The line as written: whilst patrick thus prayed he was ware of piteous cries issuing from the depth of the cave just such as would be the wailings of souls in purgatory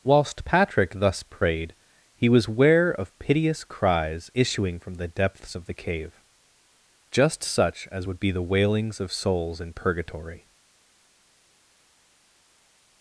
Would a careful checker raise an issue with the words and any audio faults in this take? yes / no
yes